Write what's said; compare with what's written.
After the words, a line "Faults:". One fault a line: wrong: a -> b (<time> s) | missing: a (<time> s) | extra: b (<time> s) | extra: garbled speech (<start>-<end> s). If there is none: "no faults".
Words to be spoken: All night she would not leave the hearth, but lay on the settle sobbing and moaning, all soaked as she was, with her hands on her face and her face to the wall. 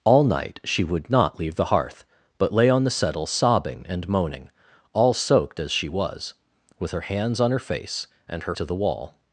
All night she would not leave the hearth, but lay on the settle sobbing and moaning, all soaked as she was, with her hands on her face and her to the wall.
Faults:
missing: face (8.5 s)